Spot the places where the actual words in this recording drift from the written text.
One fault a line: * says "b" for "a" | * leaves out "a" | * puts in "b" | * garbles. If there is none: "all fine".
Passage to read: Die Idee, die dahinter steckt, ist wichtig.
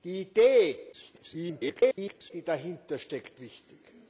* garbles
* leaves out "ist"